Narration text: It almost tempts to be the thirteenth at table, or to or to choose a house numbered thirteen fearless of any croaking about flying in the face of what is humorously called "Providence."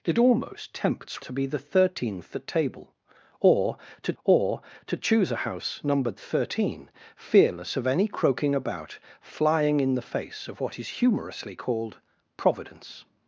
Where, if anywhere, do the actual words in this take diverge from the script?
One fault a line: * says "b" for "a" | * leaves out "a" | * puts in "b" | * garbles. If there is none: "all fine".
all fine